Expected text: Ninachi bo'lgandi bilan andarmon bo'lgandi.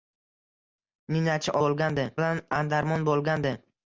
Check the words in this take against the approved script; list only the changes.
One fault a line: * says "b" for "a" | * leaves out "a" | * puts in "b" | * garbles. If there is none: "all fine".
all fine